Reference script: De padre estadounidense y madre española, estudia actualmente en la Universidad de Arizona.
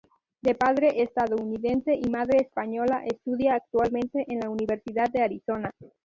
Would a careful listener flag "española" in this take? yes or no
no